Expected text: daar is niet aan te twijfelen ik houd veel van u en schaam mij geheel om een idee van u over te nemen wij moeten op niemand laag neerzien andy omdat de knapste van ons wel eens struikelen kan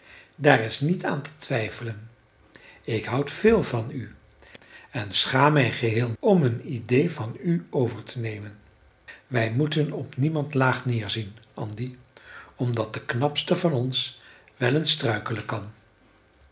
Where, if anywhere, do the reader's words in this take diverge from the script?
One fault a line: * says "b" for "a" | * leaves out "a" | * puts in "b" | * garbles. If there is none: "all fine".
all fine